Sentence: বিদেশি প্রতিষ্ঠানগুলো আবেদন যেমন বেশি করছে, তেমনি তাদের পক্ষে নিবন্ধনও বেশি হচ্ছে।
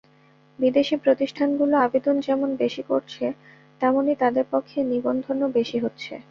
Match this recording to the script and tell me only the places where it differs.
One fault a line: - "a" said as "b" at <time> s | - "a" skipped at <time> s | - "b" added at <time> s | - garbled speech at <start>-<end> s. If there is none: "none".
none